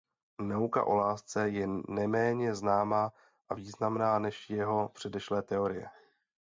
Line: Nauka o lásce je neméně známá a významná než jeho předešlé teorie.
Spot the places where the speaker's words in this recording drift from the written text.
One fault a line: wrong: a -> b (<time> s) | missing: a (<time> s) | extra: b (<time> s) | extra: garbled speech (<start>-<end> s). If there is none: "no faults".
no faults